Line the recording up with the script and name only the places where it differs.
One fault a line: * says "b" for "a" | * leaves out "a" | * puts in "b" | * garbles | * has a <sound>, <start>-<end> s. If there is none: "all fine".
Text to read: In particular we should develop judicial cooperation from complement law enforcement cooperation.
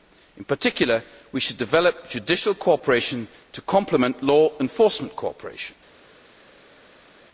* says "to" for "from"